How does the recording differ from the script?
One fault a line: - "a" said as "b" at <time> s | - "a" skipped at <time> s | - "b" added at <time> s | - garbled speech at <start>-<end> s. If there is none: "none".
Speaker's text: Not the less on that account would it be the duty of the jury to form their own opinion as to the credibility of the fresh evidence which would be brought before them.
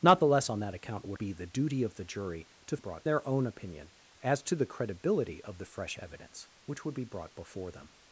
- "it" skipped at 1.2 s
- "form" said as "brought" at 2.8 s